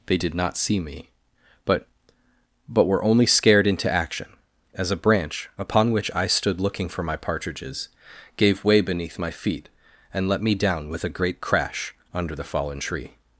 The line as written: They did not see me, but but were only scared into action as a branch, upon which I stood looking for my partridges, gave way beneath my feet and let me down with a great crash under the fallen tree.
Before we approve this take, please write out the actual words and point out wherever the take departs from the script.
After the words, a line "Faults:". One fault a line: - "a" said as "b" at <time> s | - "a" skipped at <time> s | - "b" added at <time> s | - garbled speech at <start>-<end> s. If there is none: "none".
They did not see me, but but were only scared into action as a branch, upon which I stood looking for my partridges, gave way beneath my feet and let me down with a great crash under the fallen tree.
Faults:
none